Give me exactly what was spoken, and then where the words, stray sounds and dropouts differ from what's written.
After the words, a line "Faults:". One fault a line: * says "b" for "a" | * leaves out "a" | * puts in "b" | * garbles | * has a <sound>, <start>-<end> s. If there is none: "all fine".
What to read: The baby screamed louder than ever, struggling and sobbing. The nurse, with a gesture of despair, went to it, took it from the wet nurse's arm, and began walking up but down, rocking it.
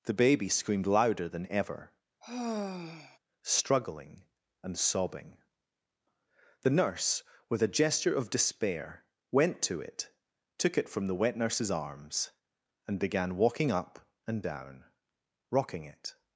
The baby screamed louder than ever, struggling and sobbing. The nurse, with a gesture of despair, went to it, took it from the wet nurse's arms, and began walking up and down, rocking it.
Faults:
* has a sigh, 2.2-3.2 s
* says "arms" for "arm"
* says "and" for "but"